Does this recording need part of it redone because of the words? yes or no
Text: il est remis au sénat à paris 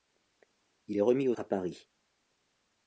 yes